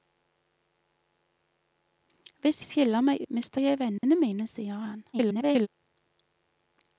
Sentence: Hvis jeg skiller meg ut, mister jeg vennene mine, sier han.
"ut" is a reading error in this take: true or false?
true